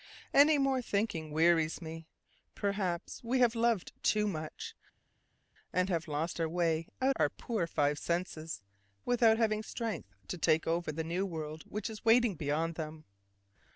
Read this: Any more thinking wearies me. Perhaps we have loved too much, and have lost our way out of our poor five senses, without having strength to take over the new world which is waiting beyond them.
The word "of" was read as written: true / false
false